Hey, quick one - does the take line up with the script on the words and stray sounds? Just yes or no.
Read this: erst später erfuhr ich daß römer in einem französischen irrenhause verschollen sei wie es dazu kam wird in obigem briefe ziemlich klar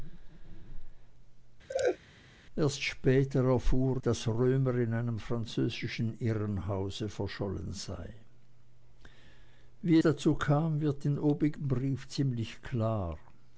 no